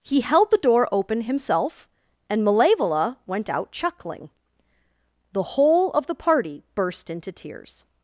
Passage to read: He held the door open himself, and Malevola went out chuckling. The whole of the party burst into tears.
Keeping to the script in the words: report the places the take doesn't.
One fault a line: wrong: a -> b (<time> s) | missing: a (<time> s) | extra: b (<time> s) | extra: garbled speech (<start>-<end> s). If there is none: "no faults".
no faults